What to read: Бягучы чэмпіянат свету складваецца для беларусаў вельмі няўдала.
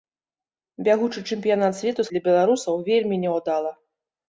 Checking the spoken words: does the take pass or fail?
fail